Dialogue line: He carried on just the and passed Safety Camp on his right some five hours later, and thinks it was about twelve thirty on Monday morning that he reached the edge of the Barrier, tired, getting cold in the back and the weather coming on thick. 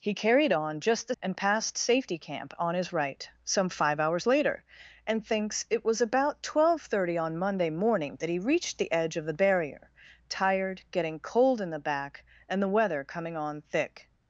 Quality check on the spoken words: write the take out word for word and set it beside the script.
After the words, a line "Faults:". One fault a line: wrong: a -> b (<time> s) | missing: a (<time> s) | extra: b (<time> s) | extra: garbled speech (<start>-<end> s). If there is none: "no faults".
He carried on just the and passed Safety Camp on his right some five hours later, and thinks it was about twelve thirty on Monday morning that he reached the edge of the Barrier, tired, getting cold in the back and the weather coming on thick.
Faults:
no faults